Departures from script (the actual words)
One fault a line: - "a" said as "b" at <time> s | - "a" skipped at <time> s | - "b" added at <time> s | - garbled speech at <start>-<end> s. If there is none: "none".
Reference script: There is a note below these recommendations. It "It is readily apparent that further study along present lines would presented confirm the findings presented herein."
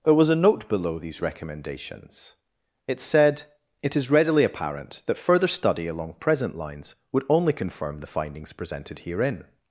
- "is" said as "was" at 0.1 s
- "said" added at 3.0 s
- "presented" said as "only" at 7.3 s